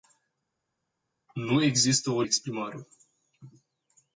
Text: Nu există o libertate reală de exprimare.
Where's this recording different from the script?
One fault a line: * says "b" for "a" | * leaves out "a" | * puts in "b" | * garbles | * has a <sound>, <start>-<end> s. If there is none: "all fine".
* leaves out "libertate reală de"